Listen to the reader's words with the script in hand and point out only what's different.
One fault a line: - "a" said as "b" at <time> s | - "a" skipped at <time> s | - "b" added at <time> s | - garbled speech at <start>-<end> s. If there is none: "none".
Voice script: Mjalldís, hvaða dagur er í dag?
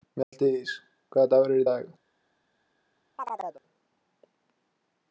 none